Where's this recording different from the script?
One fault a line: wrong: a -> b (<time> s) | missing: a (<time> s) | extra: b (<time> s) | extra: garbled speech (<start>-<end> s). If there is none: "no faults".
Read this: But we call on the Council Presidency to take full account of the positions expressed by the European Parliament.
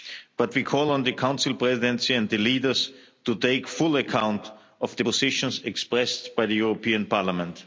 extra: and the leaders (2.1 s)